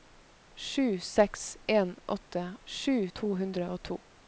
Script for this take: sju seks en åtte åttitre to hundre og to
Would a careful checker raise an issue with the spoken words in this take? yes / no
yes